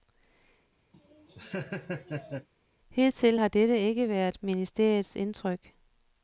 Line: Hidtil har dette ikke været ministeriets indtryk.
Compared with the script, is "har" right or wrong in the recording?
right